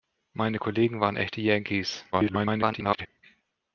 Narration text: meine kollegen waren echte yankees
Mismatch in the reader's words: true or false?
true